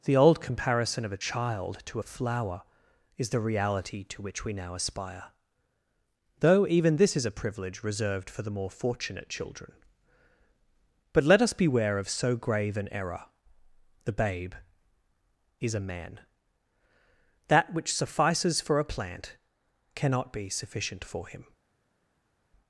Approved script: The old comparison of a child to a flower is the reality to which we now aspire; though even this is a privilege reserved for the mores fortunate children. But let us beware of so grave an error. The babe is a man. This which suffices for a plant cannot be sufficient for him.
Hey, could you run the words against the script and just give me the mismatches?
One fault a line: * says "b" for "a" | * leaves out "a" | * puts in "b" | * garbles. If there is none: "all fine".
* says "more" for "mores"
* says "That" for "This"